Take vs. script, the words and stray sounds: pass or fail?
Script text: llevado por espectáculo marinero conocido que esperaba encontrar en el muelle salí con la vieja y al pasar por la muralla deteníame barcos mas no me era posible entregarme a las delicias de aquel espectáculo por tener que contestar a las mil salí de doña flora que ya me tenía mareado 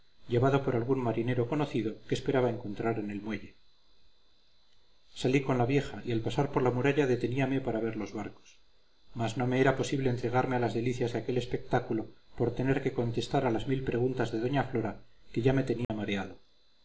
fail